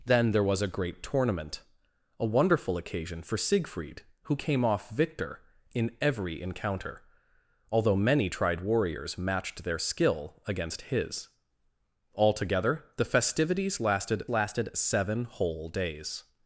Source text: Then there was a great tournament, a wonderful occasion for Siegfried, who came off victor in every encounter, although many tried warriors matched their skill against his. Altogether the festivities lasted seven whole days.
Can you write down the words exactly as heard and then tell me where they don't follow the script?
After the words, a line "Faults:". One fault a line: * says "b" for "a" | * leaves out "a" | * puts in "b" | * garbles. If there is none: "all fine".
Then there was a great tournament, a wonderful occasion for Siegfried, who came off victor in every encounter, although many tried warriors matched their skill against his. Altogether the festivities lasted lasted seven whole days.
Faults:
* puts in "lasted"